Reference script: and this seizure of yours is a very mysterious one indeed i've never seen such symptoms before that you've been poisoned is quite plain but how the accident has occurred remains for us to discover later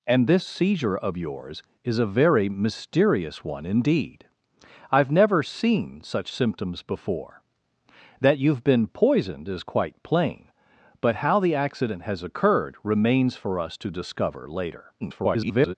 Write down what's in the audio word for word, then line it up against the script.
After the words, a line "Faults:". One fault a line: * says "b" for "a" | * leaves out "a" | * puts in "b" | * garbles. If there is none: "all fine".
and this seizure of yours is a very mysterious one indeed i've never seen such symptoms before that you've been poisoned is quite plain but how the accident has occurred remains for us to discover later [garbled]
Faults:
* garbles